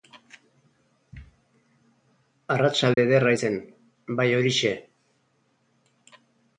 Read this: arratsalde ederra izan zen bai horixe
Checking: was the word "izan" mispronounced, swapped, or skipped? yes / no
yes